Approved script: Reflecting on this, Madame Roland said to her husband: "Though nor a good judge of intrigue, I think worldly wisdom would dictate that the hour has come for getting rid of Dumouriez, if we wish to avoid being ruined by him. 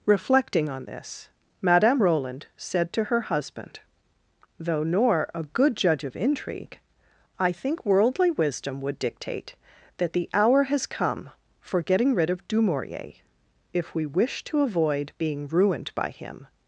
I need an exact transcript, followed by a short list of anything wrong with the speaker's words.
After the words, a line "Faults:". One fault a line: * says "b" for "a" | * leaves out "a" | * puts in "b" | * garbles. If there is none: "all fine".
Reflecting on this, Madame Roland said to her husband: "Though nor a good judge of intrigue, I think worldly wisdom would dictate that the hour has come for getting rid of Dumouriez, if we wish to avoid being ruined by him.
Faults:
all fine